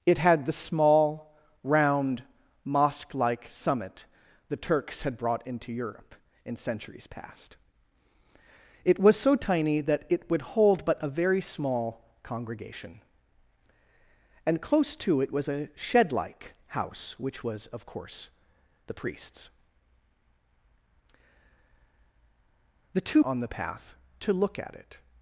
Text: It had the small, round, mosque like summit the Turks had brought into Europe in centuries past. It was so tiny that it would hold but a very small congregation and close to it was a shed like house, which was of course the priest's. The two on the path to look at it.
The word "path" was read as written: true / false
true